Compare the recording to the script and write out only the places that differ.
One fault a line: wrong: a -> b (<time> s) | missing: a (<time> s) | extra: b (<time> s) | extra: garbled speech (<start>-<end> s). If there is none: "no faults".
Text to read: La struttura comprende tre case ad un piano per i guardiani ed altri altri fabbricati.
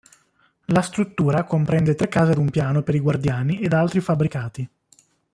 missing: altri (4.0 s)